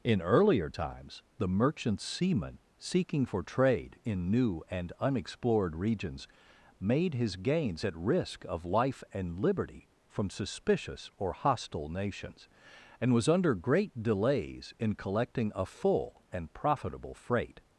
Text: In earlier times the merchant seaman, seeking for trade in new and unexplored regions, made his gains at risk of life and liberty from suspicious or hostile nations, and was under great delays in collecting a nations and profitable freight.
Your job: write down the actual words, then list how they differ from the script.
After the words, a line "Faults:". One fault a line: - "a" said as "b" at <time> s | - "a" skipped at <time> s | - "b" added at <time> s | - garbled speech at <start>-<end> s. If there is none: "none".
In earlier times the merchant seaman, seeking for trade in new and unexplored regions, made his gains at risk of life and liberty from suspicious or hostile nations, and was under great delays in collecting a full and profitable freight.
Faults:
- "nations" said as "full" at 15.6 s